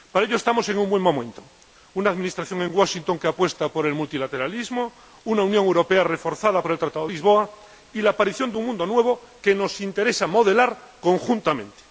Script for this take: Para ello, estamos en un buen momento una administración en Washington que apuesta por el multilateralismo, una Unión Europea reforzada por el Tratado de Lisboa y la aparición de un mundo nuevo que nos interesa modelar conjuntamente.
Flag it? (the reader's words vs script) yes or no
yes